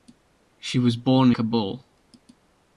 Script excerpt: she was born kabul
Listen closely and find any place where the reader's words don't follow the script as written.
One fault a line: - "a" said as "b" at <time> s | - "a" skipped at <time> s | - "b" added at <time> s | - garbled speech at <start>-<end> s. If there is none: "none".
none